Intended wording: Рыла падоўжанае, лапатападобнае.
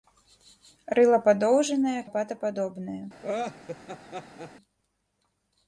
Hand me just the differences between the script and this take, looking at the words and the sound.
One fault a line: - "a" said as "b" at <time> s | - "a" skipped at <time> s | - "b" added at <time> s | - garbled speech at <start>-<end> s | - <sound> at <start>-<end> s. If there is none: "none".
- laugh at 3.2-4.5 s